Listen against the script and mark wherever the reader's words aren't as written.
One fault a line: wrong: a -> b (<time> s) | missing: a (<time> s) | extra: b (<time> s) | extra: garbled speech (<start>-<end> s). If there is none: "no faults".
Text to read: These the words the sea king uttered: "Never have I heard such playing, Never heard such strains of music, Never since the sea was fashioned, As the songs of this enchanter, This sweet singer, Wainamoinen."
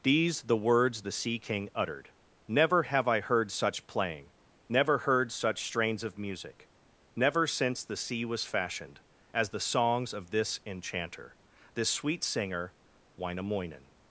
no faults